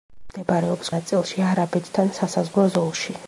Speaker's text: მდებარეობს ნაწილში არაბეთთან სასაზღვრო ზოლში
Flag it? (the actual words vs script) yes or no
no